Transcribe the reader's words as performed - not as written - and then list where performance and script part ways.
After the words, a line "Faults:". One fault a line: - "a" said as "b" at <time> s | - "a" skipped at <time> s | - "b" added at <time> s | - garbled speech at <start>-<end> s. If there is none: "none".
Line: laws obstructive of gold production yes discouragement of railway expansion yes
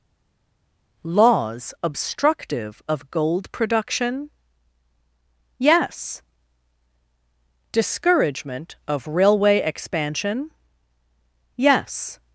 laws obstructive of gold production yes discouragement of railway expansion yes
Faults:
none